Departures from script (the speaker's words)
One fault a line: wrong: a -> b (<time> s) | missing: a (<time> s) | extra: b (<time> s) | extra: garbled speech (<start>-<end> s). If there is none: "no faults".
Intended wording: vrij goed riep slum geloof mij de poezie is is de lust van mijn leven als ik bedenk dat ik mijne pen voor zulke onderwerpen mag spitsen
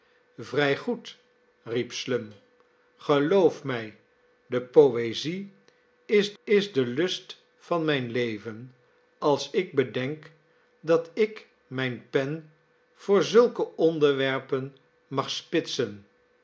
no faults